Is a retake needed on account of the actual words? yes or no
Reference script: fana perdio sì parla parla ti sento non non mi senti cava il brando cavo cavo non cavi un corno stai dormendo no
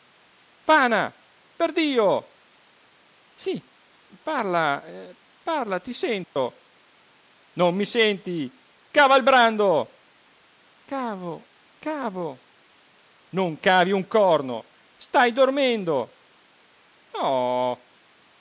yes